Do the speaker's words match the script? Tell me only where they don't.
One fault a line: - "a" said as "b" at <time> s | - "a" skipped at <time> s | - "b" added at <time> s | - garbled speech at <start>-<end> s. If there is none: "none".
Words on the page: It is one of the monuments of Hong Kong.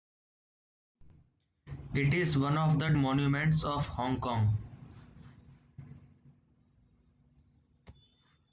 none